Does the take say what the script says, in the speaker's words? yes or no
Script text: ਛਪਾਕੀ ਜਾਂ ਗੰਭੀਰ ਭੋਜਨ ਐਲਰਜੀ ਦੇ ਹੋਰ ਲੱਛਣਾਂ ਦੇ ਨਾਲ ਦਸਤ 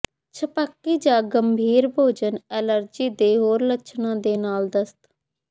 yes